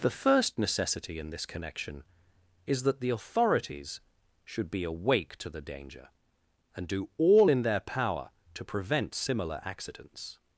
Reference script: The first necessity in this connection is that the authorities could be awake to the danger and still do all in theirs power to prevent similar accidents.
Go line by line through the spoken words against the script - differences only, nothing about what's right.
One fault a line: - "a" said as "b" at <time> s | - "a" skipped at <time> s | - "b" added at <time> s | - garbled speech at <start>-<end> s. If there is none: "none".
- "could" said as "should" at 4.4 s
- "still" skipped at 6.9 s
- "theirs" said as "their" at 7.6 s